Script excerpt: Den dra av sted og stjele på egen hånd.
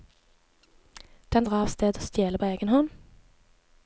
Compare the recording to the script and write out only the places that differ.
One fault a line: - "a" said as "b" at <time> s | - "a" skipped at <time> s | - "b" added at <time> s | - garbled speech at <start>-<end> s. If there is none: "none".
none